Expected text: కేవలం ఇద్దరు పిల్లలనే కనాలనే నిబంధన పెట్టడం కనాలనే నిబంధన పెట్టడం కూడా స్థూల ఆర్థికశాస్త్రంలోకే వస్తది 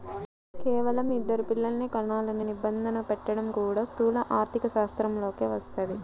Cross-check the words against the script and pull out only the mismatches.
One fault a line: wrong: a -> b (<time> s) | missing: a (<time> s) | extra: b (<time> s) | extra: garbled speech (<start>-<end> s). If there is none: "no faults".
missing: కనాలనే నిబంధన పెట్టడం (3.5 s)